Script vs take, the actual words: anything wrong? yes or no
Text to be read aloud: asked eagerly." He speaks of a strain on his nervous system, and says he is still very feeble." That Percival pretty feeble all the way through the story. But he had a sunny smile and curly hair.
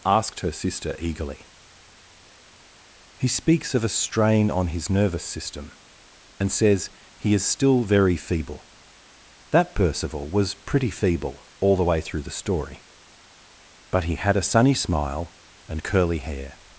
yes